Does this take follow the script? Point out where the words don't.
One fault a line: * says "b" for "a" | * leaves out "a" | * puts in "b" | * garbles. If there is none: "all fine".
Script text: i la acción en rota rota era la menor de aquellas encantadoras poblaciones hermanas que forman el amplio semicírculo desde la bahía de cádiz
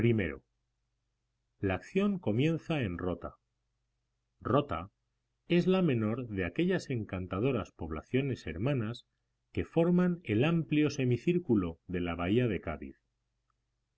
* puts in "comienza"
* says "es" for "era"
* says "de" for "desde"